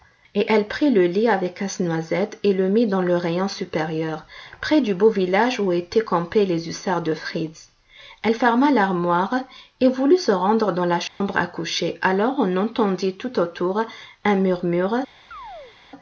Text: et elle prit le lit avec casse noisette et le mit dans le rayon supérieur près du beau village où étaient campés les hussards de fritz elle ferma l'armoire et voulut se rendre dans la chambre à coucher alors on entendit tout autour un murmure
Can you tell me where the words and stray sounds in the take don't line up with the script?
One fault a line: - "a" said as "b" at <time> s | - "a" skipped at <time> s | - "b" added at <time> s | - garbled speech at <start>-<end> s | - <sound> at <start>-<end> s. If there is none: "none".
- dropout at 11.1-11.2 s
- chirp at 15.3-15.8 s